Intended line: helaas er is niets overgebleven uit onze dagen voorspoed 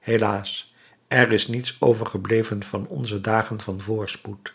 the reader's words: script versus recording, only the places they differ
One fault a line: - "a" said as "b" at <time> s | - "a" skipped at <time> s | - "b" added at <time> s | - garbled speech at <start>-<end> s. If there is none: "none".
- "uit" said as "van" at 2.6 s
- "van" added at 3.6 s